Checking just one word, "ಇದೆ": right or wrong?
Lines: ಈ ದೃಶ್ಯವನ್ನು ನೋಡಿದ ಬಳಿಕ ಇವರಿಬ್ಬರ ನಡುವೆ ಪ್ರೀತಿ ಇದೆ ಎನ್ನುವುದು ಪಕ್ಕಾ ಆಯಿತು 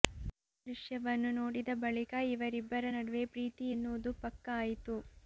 wrong